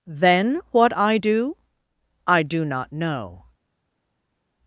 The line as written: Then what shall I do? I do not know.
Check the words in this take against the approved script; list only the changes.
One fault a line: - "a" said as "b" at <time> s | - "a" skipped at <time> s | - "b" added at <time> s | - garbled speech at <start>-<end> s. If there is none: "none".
- "shall" skipped at 0.9 s